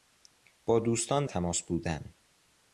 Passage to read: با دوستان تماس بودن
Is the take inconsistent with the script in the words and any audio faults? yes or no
no